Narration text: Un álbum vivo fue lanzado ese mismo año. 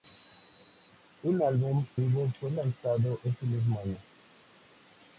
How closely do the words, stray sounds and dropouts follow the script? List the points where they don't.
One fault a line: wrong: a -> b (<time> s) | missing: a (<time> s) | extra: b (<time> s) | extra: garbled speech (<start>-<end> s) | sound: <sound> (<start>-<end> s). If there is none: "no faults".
no faults